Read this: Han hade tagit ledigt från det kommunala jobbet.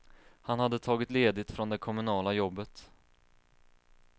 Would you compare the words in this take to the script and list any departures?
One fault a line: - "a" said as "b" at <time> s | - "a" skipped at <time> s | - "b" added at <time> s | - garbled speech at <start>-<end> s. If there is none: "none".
none